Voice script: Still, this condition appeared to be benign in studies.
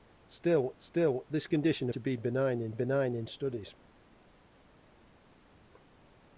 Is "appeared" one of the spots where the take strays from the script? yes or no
yes